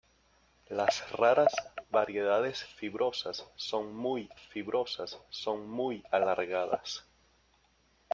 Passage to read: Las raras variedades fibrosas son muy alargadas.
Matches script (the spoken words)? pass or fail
fail